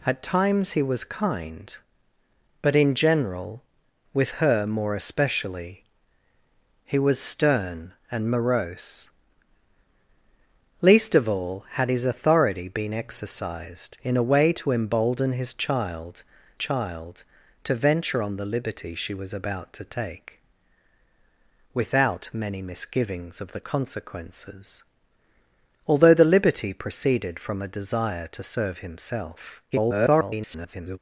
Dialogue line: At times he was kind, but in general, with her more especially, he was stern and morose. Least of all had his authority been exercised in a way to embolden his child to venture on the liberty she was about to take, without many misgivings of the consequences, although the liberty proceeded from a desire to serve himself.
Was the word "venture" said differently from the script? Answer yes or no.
no